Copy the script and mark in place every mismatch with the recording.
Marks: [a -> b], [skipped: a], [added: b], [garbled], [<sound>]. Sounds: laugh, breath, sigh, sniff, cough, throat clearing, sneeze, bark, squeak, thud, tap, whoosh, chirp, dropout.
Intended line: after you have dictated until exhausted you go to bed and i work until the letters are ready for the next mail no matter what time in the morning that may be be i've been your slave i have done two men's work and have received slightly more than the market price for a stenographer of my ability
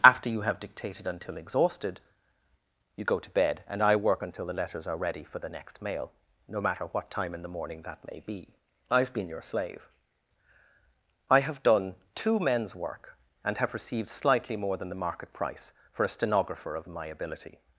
after you have dictated until exhausted you go to bed and i work until the letters are ready for the next mail no matter what time in the morning that may be [skipped: be] i've been your slave i have done two men's work and have received slightly more than the market price for a stenographer of my ability